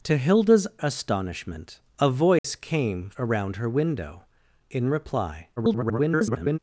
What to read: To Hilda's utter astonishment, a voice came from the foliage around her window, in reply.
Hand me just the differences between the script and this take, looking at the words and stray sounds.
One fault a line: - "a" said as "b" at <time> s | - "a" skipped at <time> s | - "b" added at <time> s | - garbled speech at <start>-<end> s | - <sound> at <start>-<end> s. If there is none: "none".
- "utter" skipped at 0.7 s
- dropout at 2.4-2.4 s
- "from the foliage" skipped at 3.1 s
- garbled speech at 5.6-6.6 s